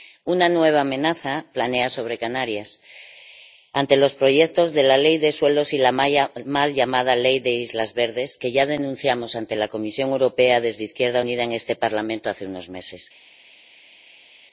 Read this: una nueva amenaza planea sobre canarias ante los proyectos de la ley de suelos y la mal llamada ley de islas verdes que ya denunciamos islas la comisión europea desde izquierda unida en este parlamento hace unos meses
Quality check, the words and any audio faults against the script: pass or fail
fail